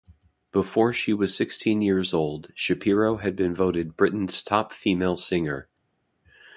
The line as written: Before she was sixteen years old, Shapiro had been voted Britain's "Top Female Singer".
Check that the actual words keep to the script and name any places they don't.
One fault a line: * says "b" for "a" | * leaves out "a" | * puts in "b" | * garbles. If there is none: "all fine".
all fine